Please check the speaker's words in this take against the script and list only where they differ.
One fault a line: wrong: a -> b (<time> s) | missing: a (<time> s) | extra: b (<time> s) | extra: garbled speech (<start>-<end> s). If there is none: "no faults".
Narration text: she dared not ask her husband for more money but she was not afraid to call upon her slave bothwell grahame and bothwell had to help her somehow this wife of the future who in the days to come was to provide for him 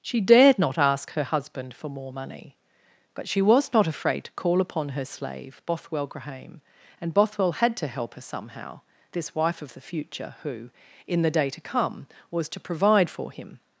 wrong: days -> day (11.3 s)